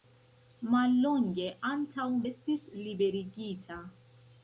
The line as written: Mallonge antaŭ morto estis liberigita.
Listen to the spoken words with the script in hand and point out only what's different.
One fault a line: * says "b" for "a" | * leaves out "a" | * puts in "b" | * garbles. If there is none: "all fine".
* leaves out "morto"